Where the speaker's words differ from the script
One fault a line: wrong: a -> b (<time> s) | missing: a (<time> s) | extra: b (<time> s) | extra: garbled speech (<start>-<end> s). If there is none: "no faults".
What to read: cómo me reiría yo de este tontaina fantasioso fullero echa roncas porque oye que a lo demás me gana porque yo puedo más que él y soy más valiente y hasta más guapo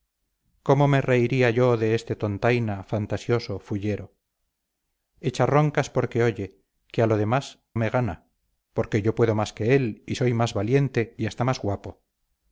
no faults